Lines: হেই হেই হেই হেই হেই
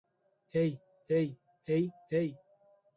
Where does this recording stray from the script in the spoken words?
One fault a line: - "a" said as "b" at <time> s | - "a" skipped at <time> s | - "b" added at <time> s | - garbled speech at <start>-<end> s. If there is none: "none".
- "হেই" skipped at 2.3 s